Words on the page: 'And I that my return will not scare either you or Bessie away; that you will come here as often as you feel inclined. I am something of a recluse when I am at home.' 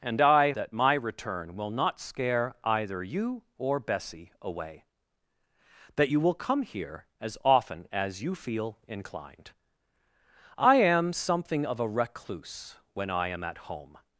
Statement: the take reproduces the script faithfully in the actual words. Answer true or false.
true